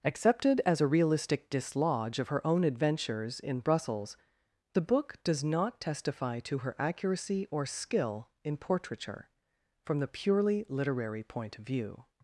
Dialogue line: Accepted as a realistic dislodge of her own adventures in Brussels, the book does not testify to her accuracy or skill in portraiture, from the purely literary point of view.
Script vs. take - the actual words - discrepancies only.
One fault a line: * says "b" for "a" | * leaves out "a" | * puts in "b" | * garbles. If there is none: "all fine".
all fine